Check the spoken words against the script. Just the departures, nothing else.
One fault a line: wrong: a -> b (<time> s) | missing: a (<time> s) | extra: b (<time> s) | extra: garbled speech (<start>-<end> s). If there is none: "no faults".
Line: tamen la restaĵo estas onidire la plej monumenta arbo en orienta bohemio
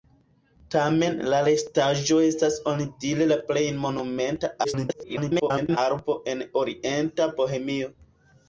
extra: garbled speech (4.6-5.8 s)